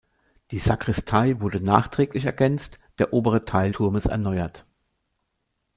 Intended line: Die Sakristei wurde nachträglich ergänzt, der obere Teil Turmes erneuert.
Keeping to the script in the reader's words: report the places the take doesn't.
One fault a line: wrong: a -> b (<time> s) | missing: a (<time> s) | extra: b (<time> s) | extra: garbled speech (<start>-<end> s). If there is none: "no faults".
no faults